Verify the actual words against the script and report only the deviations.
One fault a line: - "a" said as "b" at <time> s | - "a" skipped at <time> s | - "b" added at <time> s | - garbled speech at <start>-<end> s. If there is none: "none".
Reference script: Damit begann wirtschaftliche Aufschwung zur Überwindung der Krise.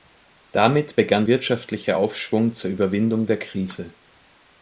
none